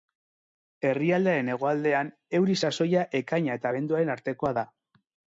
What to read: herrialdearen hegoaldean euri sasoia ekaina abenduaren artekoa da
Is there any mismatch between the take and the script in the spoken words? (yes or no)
yes